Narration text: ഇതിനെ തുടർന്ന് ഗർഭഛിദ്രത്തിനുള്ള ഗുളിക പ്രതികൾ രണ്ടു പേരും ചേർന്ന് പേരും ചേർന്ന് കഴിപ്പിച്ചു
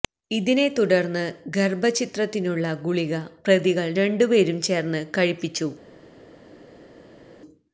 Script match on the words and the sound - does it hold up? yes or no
no